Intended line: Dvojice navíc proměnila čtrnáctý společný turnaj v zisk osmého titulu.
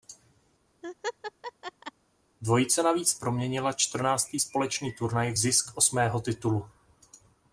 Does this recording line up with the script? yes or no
yes